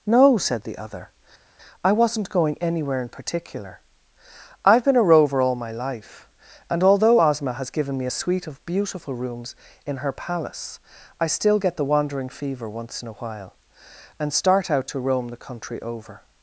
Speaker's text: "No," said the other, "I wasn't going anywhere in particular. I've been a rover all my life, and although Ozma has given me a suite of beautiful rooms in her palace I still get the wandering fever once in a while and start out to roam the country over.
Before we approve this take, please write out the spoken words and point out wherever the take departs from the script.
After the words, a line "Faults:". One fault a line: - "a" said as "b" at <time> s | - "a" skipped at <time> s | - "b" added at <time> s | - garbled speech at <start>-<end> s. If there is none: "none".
"No," said the other, "I wasn't going anywhere in particular. I've been a rover all my life, and although Ozma has given me a suite of beautiful rooms in her palace I still get the wandering fever once in a while and start out to roam the country over.
Faults:
none